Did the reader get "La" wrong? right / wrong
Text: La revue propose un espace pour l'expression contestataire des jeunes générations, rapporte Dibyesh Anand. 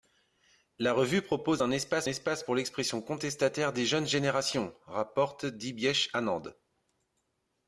right